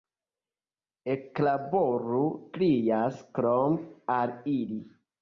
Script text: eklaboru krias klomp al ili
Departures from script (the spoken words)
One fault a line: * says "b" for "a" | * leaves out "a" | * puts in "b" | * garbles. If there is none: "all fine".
all fine